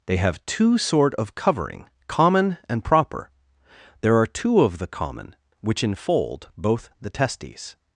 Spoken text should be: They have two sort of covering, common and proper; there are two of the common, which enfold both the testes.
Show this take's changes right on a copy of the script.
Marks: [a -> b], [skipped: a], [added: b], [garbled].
They have two sort of covering, common and proper; there are two of the common, which enfold both the testes.